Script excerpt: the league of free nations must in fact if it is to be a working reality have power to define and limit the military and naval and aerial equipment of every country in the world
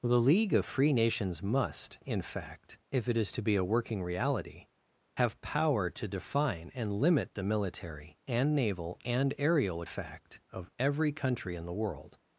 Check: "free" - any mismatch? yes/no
no